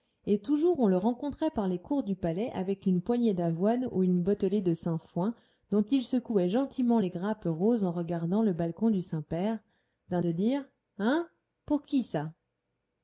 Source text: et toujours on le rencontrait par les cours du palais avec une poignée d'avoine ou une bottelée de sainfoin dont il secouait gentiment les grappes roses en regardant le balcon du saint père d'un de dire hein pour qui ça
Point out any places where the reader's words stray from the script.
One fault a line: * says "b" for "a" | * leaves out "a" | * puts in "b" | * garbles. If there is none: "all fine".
all fine